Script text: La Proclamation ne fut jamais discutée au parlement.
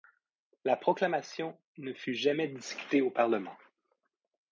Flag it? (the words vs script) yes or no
no